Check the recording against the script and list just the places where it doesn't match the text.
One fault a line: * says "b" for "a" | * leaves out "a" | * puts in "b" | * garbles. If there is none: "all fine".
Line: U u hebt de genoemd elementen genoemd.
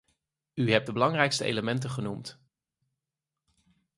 * leaves out "u"
* says "belangrijkste" for "genoemd"